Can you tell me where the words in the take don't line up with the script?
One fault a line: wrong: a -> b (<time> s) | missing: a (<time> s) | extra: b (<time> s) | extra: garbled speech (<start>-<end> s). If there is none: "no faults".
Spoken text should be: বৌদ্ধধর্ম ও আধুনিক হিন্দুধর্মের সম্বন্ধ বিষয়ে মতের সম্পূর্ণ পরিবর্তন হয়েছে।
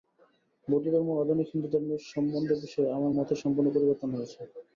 extra: আমার (3.0 s)